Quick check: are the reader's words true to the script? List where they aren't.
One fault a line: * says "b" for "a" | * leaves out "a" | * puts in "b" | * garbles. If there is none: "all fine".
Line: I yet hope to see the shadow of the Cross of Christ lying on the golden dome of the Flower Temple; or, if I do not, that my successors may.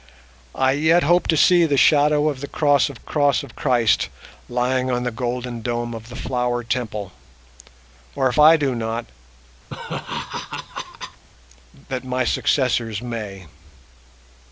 * puts in "Cross of"